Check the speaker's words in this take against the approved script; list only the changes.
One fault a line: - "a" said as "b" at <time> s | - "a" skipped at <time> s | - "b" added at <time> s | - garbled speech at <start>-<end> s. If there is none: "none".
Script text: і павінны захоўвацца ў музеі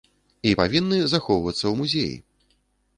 none